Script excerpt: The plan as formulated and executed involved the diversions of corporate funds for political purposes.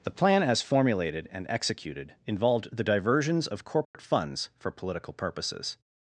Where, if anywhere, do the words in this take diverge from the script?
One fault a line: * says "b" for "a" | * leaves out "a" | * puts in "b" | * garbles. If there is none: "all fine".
all fine